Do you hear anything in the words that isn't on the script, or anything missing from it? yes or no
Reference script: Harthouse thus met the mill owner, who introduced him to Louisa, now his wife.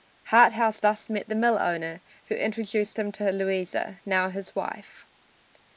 no